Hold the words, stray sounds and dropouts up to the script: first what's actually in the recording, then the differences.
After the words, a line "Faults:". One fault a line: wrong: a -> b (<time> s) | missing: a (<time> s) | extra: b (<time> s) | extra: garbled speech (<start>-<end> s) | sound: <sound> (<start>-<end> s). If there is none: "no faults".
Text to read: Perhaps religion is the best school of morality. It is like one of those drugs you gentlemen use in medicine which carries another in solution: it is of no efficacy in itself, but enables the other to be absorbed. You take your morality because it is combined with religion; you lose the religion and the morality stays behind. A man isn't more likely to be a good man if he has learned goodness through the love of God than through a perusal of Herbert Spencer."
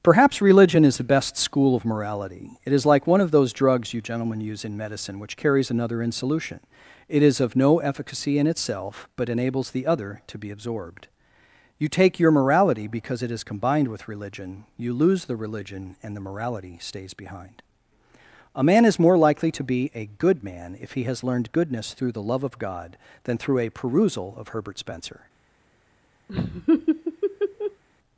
Perhaps religion is the best school of morality. It is like one of those drugs you gentlemen use in medicine which carries another in solution: it is of no efficacy in itself, but enables the other to be absorbed. You take your morality because it is combined with religion; you lose the religion and the morality stays behind. A man is more likely to be a good man if he has learned goodness through the love of God than through a perusal of Herbert Spencer."
Faults:
wrong: isn't -> is (18.9 s)
sound: laugh (26.3-27.8 s)